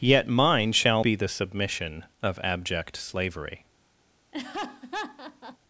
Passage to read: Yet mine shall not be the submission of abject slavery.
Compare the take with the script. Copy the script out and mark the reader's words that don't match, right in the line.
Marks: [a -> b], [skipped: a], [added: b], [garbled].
Yet mine shall [skipped: not] be the submission of abject slavery.